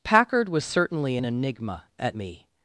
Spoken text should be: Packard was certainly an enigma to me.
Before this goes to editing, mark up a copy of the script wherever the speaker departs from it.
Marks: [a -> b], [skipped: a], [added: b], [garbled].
Packard was certainly an enigma [to -> at] me.